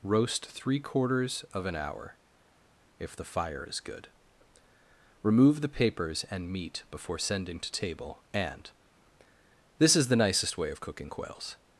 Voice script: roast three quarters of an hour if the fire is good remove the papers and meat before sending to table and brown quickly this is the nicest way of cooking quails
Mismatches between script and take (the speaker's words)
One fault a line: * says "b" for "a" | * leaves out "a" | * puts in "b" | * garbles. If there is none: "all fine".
* leaves out "brown quickly"